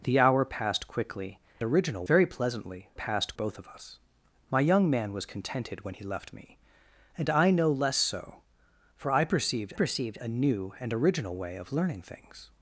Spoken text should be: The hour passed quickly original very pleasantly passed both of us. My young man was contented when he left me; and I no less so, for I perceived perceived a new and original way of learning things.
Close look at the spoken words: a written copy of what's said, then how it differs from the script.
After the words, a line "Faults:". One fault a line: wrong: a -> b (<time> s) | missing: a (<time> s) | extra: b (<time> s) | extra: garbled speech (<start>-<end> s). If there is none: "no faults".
The hour passed quickly original very pleasantly passed both of us. My young man was contented when he left me; and I no less so, for I perceived perceived a new and original way of learning things.
Faults:
no faults